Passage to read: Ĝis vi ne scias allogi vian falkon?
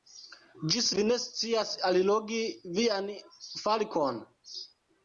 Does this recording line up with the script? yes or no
yes